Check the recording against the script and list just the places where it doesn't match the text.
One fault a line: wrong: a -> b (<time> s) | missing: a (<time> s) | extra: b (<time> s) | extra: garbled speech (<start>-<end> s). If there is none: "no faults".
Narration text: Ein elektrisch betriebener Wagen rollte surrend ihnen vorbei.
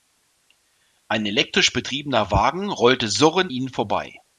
no faults